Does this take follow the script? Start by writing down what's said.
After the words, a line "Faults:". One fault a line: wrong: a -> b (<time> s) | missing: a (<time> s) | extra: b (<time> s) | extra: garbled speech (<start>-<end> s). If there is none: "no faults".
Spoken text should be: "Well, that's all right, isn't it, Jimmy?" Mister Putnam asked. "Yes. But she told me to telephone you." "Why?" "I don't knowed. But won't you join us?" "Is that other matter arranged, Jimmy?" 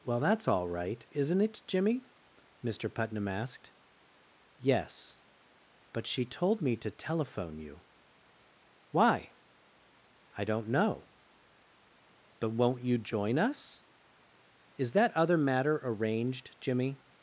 "Well, that's all right, isn't it, Jimmy?" Mister Putnam asked. "Yes. But she told me to telephone you." "Why?" "I don't know. But won't you join us?" "Is that other matter arranged, Jimmy?"
Faults:
wrong: knowed -> know (10.7 s)